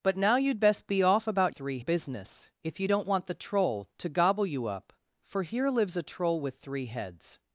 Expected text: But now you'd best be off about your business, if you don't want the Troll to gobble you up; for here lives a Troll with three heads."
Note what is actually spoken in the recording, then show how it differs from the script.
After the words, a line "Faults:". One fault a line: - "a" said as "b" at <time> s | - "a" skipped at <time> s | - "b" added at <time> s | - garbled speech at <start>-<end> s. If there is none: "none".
But now you'd best be off about three business, if you don't want the Troll to gobble you up; for here lives a Troll with three heads."
Faults:
- "your" said as "three" at 1.5 s